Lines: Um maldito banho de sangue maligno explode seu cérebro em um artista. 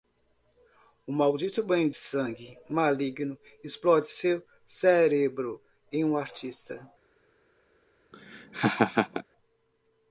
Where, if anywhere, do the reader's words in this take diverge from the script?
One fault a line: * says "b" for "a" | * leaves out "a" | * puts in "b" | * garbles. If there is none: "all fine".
all fine